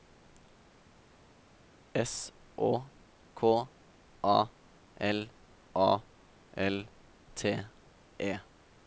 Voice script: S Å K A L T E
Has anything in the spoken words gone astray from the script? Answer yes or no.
yes